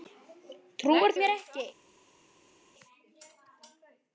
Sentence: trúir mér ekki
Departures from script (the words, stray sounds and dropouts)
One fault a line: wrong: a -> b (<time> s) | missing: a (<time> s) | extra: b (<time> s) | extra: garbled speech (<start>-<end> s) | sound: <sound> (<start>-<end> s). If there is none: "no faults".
no faults